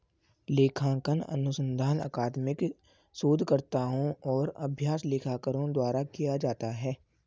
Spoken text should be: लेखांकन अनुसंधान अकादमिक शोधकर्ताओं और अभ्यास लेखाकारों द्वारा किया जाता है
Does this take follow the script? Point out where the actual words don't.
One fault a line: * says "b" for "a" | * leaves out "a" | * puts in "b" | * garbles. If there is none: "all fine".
all fine